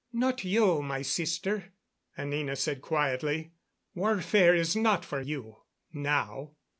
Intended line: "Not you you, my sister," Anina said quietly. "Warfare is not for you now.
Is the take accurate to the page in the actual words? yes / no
no